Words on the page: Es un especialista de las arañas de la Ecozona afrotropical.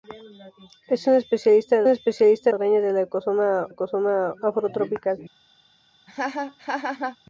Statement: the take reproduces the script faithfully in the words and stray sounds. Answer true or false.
false